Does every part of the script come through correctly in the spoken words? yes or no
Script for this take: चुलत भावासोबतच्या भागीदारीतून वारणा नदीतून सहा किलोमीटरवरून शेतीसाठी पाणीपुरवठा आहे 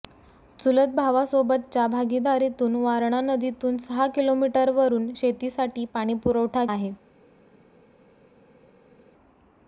yes